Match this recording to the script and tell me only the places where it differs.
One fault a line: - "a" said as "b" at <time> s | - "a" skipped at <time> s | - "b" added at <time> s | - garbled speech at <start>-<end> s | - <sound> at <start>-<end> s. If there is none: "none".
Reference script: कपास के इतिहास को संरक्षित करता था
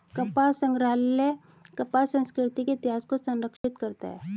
- "संग्रहालय कपास संस्कृति" added at 0.6 s
- dropout at 3.6-3.6 s
- "था" said as "है" at 4.1 s